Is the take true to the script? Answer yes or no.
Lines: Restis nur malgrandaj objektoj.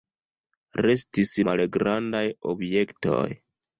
no